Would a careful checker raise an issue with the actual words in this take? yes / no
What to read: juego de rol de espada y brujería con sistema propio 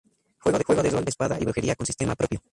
no